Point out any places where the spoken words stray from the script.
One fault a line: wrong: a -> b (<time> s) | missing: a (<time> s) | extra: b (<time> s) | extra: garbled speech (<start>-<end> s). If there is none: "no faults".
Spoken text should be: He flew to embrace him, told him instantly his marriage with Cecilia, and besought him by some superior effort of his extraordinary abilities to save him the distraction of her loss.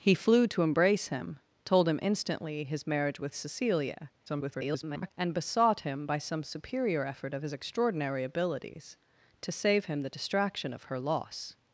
extra: garbled speech (4.3-5.1 s)